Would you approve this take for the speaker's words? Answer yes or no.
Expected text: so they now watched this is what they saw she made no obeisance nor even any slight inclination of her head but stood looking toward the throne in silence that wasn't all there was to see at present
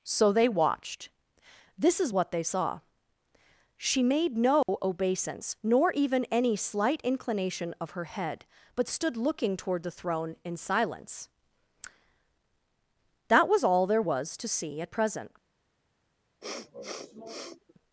no